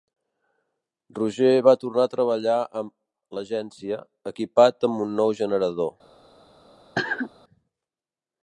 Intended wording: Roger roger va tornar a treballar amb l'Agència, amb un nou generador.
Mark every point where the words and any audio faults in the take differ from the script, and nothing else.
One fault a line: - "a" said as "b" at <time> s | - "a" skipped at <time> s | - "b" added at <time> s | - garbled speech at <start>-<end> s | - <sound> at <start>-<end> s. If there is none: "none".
- "roger" skipped at 1.5 s
- "equipat" added at 4.3 s
- cough at 6.9-7.3 s